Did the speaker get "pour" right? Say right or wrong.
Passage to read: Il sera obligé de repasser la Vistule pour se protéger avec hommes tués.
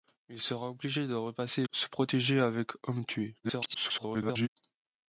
wrong